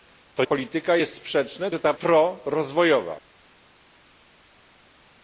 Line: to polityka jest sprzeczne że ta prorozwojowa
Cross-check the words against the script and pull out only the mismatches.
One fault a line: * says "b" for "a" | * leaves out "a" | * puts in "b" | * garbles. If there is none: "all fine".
all fine